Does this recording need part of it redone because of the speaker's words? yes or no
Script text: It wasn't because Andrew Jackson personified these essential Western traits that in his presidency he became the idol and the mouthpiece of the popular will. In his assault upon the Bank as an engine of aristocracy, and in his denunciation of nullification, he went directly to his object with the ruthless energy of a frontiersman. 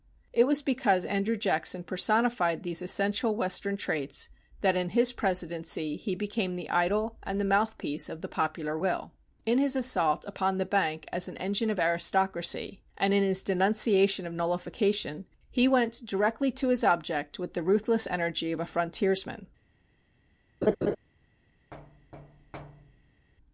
yes